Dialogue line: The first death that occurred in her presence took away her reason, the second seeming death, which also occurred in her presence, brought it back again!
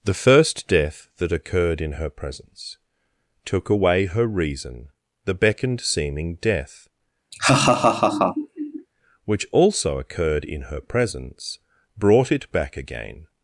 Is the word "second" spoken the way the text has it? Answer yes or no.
no